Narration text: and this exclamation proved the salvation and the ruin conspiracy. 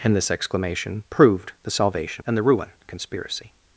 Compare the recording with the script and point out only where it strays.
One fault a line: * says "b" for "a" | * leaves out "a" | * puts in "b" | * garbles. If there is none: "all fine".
all fine